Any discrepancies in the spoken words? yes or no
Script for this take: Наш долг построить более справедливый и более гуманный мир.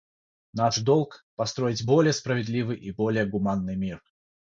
no